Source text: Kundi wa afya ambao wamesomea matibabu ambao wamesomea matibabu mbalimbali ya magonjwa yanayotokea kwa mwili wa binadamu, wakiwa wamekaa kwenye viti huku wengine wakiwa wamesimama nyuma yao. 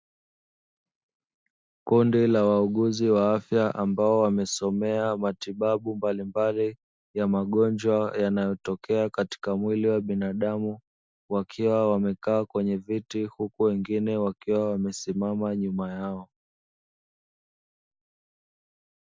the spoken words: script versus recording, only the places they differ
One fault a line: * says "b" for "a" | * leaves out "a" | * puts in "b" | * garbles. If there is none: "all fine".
* puts in "la wauguzi"
* leaves out "ambao wamesomea matibabu"
* says "katika" for "kwa"